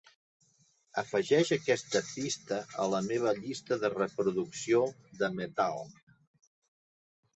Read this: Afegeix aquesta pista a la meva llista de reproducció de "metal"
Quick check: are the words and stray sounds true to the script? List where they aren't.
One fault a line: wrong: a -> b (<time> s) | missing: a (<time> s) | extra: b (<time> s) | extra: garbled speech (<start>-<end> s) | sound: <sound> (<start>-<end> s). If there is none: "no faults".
no faults